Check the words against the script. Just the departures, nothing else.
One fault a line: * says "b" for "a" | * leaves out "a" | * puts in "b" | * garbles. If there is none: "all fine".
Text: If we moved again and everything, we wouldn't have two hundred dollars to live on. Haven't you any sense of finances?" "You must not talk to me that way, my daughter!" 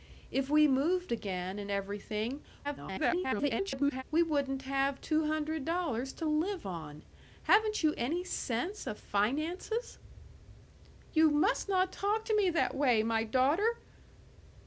* garbles